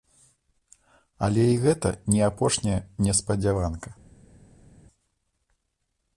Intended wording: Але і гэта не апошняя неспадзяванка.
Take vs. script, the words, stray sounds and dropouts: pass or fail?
pass